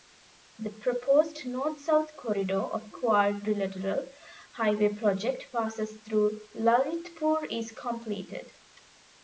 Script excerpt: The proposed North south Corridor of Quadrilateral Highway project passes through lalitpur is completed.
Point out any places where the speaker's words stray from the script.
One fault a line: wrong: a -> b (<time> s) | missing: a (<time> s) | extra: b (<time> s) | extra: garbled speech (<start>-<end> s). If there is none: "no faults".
no faults